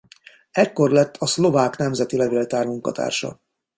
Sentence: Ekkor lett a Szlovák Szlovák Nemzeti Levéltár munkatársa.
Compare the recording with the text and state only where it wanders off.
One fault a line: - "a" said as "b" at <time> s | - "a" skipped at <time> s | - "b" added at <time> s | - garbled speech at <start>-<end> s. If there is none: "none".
- "Szlovák" skipped at 1.8 s